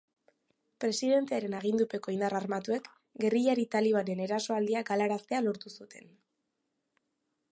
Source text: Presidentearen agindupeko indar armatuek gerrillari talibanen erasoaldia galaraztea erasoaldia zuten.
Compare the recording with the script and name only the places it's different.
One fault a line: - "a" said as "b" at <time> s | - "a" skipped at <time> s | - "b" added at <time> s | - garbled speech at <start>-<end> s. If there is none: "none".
- "erasoaldia" said as "lortu" at 5.5 s